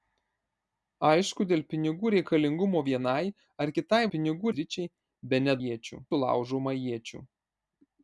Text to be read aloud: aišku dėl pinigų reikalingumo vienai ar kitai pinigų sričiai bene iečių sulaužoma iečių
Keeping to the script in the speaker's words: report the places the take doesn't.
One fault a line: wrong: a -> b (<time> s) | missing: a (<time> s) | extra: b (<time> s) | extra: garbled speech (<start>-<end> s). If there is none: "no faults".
no faults